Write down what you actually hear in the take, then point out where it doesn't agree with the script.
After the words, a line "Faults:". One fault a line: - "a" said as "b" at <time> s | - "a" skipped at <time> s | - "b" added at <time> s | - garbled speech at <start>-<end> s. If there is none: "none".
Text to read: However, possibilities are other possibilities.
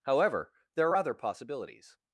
However, there are other possibilities.
Faults:
- "possibilities" said as "there" at 0.8 s